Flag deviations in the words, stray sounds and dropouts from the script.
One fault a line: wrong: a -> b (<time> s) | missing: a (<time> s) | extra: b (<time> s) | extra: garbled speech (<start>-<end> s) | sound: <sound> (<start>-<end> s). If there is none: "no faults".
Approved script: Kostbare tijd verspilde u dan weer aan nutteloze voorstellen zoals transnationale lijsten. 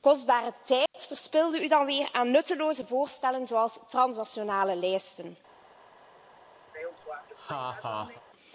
sound: dropout (0.9-0.9 s)
sound: laugh (6.7-8.2 s)